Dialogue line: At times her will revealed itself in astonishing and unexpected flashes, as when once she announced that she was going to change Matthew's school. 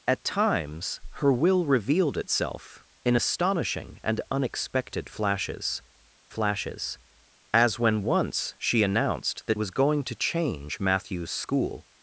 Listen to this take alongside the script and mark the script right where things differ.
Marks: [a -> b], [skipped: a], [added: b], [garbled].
At times her will revealed itself in astonishing and unexpected flashes, [added: flashes] as when once she announced that [skipped: she] was going to change Matthew's school.